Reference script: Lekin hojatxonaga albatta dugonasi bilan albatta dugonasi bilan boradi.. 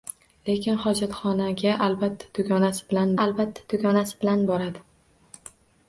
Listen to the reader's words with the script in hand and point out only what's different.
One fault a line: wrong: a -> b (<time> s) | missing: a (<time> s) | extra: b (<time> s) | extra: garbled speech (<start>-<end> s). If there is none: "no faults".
no faults